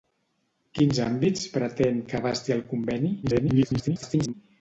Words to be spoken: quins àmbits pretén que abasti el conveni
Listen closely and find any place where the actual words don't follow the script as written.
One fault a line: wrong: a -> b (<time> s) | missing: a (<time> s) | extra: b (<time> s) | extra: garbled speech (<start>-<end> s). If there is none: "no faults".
extra: garbled speech (3.2-4.3 s)